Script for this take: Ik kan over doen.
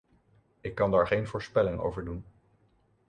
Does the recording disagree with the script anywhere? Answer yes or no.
yes